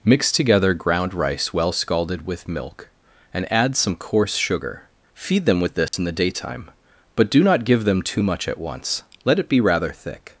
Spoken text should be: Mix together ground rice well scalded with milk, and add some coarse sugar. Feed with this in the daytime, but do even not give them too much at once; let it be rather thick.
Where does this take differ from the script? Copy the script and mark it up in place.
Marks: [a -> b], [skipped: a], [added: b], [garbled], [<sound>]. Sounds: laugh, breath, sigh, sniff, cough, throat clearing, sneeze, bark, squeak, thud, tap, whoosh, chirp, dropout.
Mix together ground rice well scalded with milk, and add some coarse sugar. Feed [added: them] with this [dropout] in the daytime, but do [skipped: even] not give them too much at once; let it be rather thick.